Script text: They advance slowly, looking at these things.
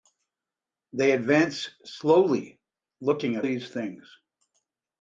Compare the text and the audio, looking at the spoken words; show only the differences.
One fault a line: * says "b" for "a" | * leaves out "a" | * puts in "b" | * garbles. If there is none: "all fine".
all fine